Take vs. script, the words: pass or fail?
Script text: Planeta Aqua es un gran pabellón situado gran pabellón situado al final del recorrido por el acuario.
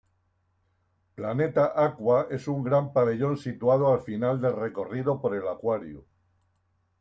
fail